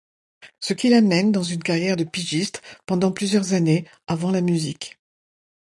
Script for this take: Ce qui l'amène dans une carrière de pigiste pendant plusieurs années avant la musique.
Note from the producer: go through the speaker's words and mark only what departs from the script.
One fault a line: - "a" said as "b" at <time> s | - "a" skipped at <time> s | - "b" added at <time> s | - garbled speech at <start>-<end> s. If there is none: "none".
none